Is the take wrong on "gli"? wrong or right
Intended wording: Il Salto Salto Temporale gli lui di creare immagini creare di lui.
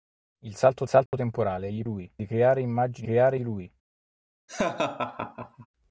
right